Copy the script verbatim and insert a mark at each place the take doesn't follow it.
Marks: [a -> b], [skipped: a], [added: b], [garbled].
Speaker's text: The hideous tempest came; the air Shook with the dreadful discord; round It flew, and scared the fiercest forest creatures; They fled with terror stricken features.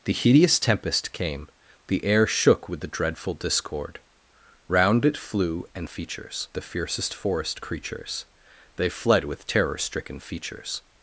The hideous tempest came; the air Shook with the dreadful discord; round It flew, and [scared -> features] the fiercest forest creatures; They fled with terror stricken features.